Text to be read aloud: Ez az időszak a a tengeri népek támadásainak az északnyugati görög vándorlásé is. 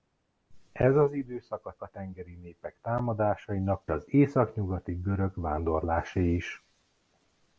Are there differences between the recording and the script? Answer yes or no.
no